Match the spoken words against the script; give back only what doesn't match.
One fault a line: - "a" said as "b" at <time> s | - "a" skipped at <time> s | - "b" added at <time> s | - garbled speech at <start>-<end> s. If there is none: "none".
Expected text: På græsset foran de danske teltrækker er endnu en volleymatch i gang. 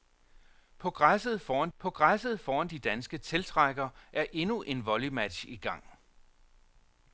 - "på græsset foran" added at 1.8 s